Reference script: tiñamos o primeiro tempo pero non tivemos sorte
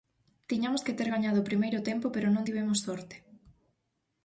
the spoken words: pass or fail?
fail